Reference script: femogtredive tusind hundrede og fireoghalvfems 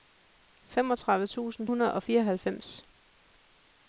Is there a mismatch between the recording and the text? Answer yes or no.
no